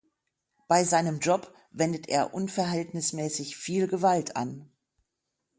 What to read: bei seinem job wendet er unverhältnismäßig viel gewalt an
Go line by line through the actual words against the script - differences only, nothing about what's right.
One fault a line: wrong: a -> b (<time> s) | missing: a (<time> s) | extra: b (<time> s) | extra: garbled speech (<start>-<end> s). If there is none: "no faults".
no faults